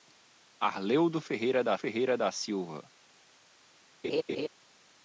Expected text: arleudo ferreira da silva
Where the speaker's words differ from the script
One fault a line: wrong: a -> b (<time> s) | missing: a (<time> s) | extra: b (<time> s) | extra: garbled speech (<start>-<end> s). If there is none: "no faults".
extra: ferreira da (1.7 s)